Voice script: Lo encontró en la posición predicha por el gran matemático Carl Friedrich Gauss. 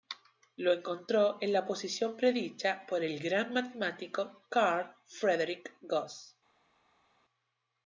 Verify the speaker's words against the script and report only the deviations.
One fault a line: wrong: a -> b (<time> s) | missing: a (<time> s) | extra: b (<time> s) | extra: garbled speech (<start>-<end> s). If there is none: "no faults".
no faults